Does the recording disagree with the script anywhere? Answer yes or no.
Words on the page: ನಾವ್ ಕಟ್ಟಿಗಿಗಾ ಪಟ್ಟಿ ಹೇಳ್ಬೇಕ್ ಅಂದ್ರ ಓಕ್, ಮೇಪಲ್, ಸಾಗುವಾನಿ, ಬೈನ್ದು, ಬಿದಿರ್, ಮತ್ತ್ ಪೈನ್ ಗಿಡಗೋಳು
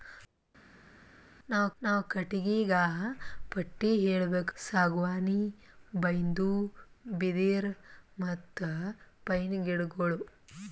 yes